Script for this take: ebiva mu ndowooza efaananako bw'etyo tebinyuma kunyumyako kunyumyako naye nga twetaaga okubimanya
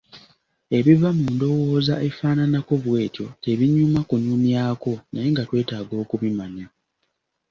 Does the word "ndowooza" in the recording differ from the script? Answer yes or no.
no